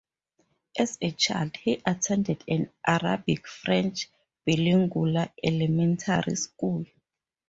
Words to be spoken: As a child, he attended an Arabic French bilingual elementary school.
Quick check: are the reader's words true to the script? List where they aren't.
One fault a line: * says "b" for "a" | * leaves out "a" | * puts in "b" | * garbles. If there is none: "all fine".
all fine